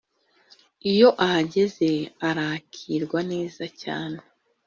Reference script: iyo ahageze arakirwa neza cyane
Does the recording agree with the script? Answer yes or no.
yes